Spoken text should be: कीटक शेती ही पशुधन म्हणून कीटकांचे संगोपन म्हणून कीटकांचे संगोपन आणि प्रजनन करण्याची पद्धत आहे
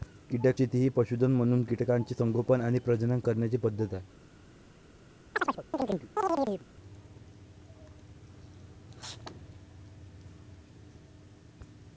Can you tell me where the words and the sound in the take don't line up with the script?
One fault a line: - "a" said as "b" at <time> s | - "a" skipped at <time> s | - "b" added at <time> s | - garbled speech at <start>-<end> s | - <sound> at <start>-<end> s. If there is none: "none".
- "म्हणून कीटकांचे संगोपन" skipped at 2.6 s
- chirp at 5.3-6.7 s